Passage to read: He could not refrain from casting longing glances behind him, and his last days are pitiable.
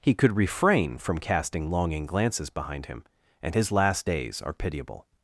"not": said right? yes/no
no